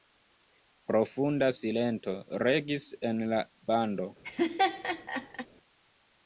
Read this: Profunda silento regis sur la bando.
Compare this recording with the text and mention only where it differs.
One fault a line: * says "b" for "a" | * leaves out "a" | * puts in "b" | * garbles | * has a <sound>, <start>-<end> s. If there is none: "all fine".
* says "en" for "sur"
* has a laugh, 4.2-5.5 s